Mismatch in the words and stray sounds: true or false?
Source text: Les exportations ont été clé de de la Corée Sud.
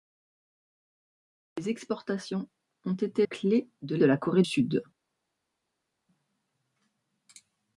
false